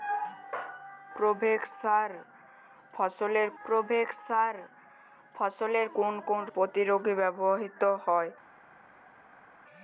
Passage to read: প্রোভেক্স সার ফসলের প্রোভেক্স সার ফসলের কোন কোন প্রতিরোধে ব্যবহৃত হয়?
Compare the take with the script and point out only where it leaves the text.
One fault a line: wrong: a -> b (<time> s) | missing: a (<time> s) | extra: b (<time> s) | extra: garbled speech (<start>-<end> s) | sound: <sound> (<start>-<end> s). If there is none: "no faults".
no faults